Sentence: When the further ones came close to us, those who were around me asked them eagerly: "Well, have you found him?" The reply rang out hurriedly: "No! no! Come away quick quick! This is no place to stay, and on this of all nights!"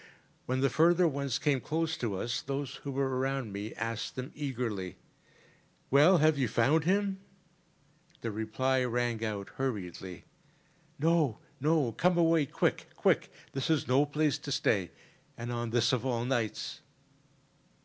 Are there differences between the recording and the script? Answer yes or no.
no